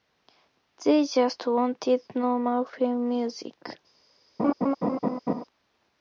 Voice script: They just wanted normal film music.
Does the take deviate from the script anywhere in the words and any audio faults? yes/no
yes